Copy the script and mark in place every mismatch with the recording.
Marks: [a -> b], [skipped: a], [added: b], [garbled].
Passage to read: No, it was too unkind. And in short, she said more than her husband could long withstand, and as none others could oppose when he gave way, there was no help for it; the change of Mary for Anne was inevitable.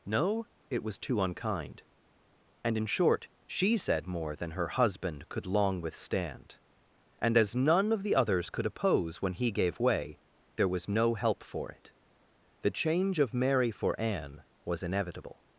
No, it was too unkind. And in short, she said more than her husband could long withstand, and as none [added: of the] others could oppose when he gave way, there was no help for it; the change of Mary for Anne was inevitable.